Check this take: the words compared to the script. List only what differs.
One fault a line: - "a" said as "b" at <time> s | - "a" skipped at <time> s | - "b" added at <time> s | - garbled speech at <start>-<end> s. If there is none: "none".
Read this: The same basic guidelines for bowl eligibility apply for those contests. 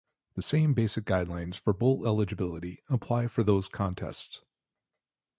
none